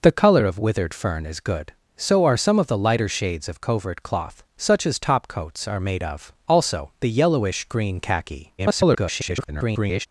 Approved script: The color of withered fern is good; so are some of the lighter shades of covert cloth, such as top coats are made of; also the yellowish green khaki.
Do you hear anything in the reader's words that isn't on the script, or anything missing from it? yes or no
yes